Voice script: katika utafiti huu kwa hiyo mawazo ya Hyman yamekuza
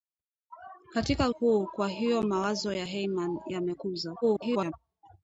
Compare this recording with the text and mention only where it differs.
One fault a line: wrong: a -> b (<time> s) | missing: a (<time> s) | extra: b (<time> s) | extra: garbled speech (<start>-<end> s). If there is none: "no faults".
missing: utafiti (1.3 s)
extra: garbled speech (4.2-4.7 s)